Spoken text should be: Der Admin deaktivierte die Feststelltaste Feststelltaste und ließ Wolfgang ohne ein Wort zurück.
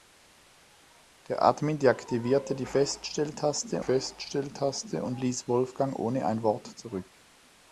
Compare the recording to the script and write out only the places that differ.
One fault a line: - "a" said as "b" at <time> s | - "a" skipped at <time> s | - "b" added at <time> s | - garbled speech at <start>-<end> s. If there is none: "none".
none